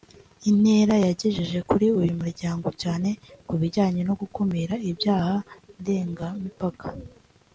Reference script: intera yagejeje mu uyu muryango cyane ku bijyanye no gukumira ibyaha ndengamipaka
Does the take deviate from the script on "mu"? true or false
true